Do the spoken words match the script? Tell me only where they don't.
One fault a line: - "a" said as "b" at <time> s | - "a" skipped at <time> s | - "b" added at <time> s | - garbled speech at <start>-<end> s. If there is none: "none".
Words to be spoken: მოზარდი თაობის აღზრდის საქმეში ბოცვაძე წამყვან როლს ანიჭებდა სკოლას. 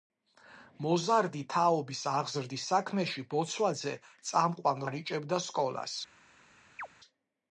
- "როლს" skipped at 4.8 s